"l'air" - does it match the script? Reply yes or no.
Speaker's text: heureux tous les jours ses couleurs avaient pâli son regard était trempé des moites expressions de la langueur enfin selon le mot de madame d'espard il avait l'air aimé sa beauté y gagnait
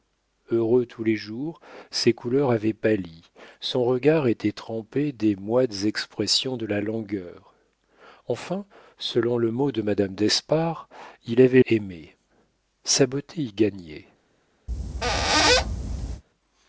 no